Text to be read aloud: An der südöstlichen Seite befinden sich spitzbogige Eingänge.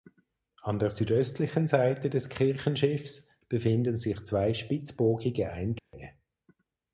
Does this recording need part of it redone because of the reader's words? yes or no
yes